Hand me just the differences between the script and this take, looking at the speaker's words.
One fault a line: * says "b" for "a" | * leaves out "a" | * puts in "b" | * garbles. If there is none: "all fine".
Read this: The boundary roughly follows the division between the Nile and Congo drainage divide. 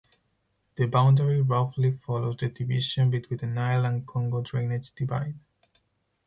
all fine